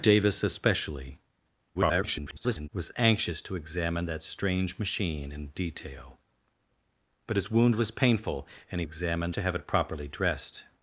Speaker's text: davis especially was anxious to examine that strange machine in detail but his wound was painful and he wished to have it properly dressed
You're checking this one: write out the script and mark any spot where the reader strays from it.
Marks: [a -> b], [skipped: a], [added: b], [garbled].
davis especially [garbled] was anxious to examine that strange machine in detail but his wound was painful and he [wished -> examine] to have it properly dressed